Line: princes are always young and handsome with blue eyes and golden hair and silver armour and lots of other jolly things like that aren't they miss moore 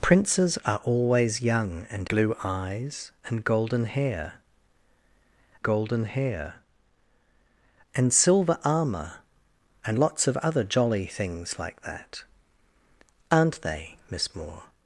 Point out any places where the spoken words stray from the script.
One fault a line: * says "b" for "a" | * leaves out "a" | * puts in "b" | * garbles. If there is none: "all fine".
* leaves out "handsome with"
* puts in "golden hair"